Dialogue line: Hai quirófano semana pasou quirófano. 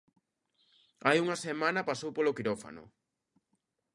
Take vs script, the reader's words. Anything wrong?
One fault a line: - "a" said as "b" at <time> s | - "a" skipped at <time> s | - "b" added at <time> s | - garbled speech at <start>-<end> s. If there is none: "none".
- "quirófano" said as "unha" at 1.2 s
- "polo" added at 2.2 s